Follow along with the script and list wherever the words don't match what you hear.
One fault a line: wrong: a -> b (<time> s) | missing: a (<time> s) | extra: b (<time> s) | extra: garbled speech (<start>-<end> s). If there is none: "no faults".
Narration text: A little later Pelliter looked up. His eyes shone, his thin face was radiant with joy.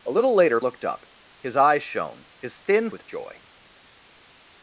missing: Pelliter (0.6 s)
missing: face was radiant (2.9 s)